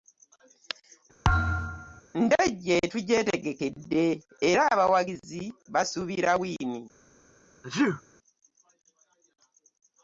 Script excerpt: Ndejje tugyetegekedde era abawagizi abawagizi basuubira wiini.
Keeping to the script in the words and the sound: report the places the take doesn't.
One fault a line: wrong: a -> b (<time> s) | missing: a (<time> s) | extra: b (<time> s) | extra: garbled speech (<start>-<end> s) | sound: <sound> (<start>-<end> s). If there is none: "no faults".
sound: thud (1.2-2.0 s)
missing: abawagizi (5.4 s)
sound: sneeze (7.6-8.0 s)